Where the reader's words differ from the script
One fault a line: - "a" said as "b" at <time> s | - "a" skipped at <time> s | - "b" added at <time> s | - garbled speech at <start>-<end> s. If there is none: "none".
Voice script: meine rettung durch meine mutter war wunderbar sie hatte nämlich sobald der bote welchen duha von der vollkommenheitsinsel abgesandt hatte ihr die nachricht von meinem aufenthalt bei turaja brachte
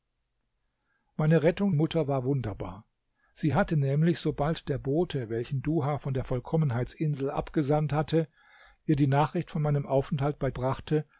- "durch meine" skipped at 1.7 s
- "turaja" skipped at 10.5 s